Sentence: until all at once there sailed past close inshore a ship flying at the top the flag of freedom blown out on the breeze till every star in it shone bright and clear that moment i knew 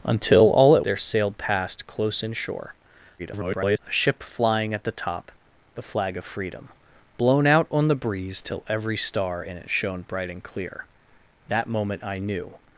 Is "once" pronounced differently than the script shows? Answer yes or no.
yes